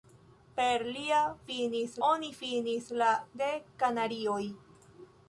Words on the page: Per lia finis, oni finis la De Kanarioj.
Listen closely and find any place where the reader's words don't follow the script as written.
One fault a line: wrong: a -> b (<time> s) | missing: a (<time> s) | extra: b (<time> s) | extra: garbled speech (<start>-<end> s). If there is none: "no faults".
no faults